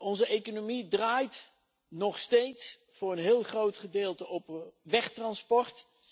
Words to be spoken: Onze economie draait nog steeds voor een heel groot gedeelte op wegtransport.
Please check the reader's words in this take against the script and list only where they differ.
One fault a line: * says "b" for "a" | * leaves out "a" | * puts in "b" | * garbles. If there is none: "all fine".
all fine